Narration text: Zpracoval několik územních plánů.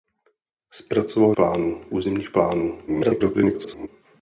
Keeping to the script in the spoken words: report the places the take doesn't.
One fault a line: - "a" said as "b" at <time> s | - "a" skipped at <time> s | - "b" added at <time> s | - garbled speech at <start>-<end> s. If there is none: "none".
- "několik" said as "plánů" at 1.3 s
- garbled speech at 2.9-3.9 s